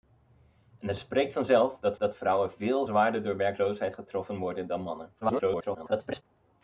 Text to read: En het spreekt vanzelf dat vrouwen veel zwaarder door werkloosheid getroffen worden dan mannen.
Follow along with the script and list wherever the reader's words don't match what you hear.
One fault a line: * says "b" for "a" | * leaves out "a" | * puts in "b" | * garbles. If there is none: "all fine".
* puts in "dat"
* garbles